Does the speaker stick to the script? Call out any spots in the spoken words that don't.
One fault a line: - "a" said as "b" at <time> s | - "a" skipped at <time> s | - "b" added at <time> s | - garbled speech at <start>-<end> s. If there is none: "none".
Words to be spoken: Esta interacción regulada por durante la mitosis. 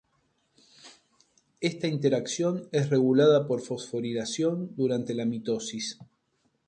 - "es" added at 2.7 s
- "fosforilación" added at 3.6 s